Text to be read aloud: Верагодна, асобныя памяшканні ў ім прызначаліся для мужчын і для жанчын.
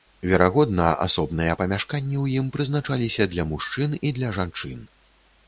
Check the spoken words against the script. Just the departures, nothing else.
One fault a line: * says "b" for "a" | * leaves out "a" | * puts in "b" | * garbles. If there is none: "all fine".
all fine